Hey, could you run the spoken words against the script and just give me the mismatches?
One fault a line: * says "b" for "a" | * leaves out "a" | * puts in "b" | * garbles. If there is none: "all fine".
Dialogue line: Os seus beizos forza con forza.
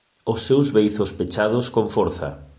* says "pechados" for "forza"